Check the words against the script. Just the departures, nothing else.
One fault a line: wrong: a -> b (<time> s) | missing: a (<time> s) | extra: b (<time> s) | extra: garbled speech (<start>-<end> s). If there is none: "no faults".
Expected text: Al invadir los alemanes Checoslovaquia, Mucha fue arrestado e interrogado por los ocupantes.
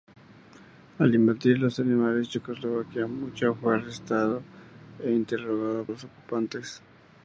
missing: por (5.8 s)